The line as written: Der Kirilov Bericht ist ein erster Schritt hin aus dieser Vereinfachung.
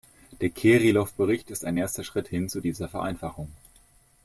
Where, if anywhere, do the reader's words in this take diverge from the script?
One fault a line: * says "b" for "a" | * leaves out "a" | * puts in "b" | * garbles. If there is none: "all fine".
* says "zu" for "aus"